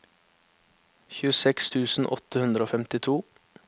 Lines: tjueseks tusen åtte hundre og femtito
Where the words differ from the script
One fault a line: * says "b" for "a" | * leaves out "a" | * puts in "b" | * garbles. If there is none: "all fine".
all fine